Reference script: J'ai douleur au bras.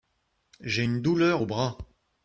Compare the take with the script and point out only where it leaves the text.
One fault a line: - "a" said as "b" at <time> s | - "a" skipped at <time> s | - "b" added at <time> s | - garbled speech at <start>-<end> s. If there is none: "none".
- "une" added at 0.8 s